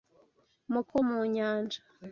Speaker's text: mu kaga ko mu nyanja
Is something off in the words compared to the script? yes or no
yes